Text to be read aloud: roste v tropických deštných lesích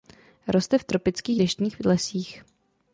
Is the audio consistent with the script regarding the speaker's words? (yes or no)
yes